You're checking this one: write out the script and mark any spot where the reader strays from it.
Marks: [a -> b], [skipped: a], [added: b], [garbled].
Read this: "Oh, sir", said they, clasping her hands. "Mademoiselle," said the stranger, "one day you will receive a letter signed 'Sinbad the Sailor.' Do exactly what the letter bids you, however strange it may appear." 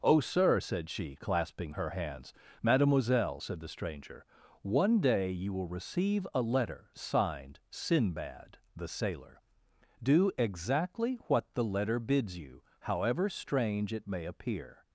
"Oh, sir", said [they, -> she] clasping her hands. "Mademoiselle," said the stranger, "one day you will receive a letter signed 'Sinbad the Sailor.' Do exactly what the letter bids you, however strange it may appear."